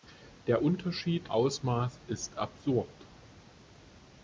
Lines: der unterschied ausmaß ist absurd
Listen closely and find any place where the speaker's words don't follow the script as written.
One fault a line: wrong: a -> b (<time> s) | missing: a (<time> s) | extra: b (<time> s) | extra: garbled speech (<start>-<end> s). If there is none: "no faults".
no faults